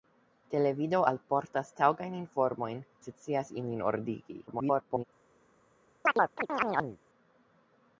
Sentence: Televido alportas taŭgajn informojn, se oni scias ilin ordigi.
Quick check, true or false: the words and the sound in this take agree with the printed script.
false